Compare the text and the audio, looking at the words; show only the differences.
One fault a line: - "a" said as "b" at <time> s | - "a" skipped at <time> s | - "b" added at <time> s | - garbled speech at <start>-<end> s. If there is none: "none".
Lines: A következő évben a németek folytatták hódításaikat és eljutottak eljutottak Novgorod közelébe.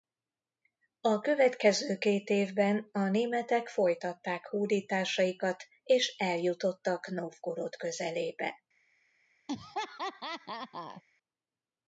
- "két" added at 2.0 s
- "eljutottak" skipped at 7.1 s